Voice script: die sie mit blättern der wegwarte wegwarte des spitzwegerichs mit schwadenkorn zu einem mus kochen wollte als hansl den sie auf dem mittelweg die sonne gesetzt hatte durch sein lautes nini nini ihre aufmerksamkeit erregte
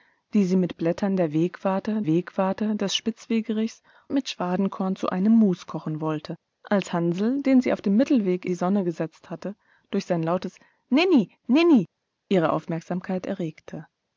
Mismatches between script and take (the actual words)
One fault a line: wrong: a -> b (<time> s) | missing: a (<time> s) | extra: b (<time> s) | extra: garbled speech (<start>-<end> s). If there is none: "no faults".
no faults